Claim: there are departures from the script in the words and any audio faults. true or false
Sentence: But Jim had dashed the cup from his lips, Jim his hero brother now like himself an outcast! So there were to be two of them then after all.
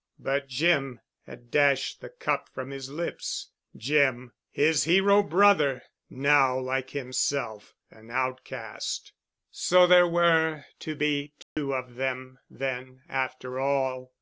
true